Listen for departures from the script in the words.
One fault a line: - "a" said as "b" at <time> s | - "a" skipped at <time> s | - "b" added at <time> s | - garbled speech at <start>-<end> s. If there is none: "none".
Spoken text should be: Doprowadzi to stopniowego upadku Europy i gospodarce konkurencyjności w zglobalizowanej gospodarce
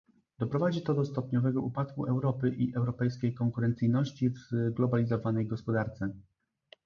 - "do" added at 0.9 s
- "gospodarce" said as "europejskiej" at 2.8 s